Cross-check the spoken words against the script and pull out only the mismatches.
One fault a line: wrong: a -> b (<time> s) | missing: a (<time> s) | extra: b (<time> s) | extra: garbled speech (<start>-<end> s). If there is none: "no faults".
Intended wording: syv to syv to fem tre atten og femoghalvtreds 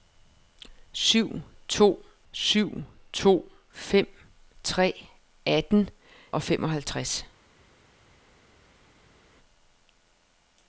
no faults